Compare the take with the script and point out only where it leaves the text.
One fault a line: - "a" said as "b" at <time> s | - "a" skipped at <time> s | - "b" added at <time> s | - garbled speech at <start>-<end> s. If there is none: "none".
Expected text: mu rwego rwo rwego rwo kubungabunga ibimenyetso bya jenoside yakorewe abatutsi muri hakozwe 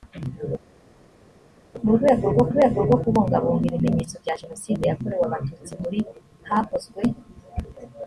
none